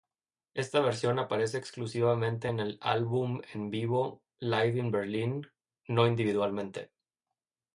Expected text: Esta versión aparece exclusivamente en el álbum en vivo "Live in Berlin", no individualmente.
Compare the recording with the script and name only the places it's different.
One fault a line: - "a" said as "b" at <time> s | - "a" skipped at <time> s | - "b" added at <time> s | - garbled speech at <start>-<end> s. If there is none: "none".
none